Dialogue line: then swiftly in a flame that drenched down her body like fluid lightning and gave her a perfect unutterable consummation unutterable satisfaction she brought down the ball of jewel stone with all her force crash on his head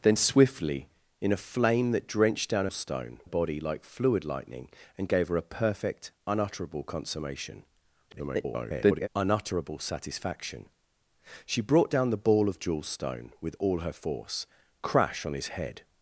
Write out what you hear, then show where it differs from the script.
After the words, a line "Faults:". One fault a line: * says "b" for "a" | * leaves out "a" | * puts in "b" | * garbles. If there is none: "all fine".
then swiftly in a flame that drenched down stone body like fluid lightning and gave her a perfect unutterable consummation [garbled] unutterable satisfaction she brought down the ball of jewel stone with all her force crash on his head
Faults:
* says "stone" for "her"
* garbles